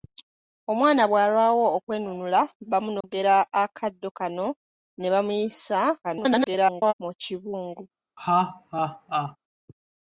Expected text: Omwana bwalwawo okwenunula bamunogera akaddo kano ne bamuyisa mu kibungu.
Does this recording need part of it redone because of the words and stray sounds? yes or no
yes